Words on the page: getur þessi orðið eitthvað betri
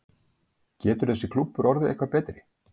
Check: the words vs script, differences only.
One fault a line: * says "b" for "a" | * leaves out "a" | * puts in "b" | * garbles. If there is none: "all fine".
* puts in "klúbbur"